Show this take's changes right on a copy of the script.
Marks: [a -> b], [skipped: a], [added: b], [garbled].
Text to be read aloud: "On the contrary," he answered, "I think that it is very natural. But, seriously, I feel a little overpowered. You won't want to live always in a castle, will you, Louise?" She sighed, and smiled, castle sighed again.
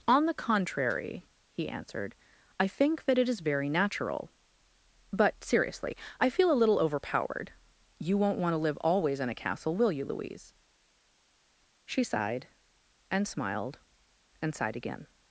"On the contrary," he answered, "I think that it is very natural. But, seriously, I feel a little overpowered. You won't want to live always in a castle, will you, Louise?" She sighed, and smiled, [castle -> and] sighed again.